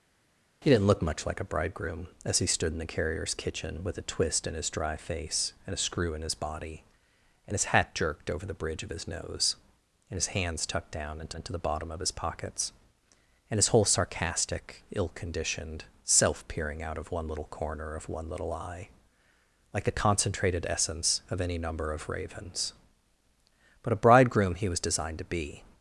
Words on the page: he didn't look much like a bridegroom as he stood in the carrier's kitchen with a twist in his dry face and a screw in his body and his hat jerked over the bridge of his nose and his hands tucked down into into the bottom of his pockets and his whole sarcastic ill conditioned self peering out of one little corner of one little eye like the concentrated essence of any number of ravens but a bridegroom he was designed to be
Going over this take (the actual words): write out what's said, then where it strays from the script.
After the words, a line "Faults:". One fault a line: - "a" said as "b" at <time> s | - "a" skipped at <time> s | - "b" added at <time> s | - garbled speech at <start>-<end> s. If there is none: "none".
he didn't look much like a bridegroom as he stood in the carrier's kitchen with a twist in his dry face and a screw in his body and his hat jerked over the bridge of his nose and his hands tucked down into into the bottom of his pockets and his whole sarcastic ill conditioned self peering out of one little corner of one little eye like the concentrated essence of any number of ravens but a bridegroom he was designed to be
Faults:
none